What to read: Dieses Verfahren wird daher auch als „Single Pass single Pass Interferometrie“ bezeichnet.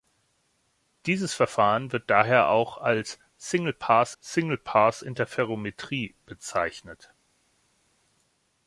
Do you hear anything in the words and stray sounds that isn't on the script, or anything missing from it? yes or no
no